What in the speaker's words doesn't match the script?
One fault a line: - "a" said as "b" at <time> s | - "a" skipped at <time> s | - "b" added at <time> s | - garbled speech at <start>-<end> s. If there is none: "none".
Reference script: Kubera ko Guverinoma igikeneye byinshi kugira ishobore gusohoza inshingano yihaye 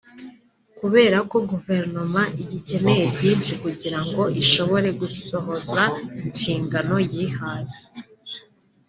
- "ngo" added at 4.1 s